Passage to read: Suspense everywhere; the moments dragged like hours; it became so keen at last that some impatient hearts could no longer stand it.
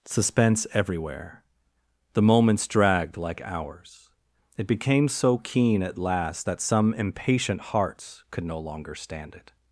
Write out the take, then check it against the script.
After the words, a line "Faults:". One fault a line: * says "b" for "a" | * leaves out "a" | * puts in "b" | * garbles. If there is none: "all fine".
Suspense everywhere; the moments dragged like hours; it became so keen at last that some impatient hearts could no longer stand it.
Faults:
all fine